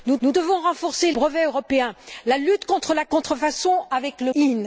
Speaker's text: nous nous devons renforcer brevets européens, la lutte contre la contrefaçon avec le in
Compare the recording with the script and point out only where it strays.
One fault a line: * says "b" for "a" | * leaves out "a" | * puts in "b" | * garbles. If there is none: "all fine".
all fine